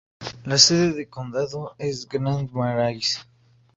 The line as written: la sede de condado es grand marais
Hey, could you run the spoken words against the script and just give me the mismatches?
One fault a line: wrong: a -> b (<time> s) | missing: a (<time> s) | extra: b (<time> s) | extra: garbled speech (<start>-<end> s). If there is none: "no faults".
no faults